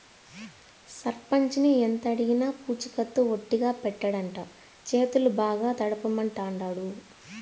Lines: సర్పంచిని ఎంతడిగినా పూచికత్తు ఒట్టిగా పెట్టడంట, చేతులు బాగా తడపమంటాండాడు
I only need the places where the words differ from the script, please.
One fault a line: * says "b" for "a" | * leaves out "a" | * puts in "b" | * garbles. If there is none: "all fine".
all fine